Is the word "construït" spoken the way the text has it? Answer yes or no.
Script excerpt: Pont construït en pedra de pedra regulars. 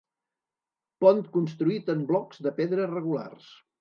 yes